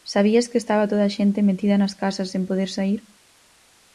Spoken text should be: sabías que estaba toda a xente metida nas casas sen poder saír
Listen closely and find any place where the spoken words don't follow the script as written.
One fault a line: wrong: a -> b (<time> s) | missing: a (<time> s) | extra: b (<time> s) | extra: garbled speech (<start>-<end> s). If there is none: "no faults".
no faults